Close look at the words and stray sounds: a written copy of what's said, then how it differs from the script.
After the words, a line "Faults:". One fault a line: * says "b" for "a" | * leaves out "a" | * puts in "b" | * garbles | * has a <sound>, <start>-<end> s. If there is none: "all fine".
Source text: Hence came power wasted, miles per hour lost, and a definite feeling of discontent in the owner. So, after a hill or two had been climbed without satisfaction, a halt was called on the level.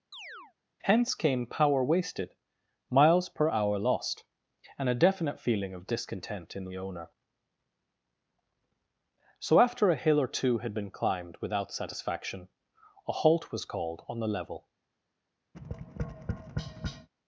Hence came power wasted, miles per hour lost, and a definite feeling of discontent in the owner. So, after a hill or two had been climbed without satisfaction, a halt was called on the level.
Faults:
* has a chirp, 0.1-0.5 s
* has a tap, 15.5-17.1 s